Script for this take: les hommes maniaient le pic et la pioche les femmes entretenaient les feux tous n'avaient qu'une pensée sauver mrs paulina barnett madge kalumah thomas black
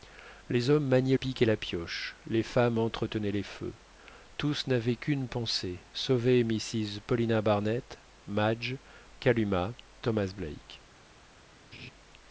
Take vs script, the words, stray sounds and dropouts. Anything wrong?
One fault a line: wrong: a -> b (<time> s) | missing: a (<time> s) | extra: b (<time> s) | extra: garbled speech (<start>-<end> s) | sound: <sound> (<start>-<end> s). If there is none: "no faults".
missing: le (1.1 s)
sound: laugh (11.7-11.9 s)